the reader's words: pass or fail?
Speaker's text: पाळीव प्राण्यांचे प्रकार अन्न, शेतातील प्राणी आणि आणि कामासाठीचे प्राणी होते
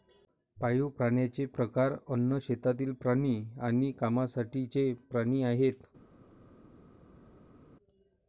fail